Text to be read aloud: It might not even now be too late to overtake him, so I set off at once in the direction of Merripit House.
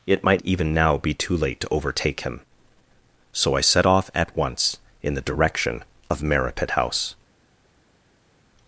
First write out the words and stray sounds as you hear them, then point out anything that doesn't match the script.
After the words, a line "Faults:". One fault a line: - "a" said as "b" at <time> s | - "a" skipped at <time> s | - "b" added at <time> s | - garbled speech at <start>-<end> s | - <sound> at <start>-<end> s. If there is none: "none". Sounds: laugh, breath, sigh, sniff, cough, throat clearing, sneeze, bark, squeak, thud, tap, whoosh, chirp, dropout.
It might even now be too late to overtake him, so I set off at once in the direction of Merripit House.
Faults:
- "not" skipped at 0.4 s